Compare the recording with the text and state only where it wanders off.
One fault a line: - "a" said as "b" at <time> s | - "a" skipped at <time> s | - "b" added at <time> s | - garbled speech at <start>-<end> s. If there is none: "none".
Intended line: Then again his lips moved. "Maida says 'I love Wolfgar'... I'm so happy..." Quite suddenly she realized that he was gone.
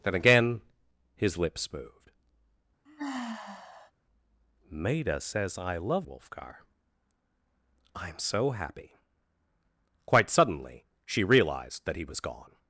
none